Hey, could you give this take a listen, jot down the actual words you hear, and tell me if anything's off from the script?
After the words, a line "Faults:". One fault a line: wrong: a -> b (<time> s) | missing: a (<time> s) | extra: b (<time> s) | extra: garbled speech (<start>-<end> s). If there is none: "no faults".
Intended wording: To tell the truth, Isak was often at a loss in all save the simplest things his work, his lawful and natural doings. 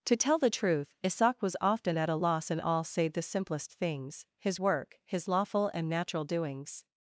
To tell the truth, Isak was often at a loss in all save the simplest things his work, his lawful and natural doings.
Faults:
no faults